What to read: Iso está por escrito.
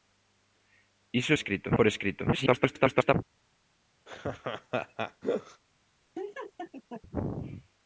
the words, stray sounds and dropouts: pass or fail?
fail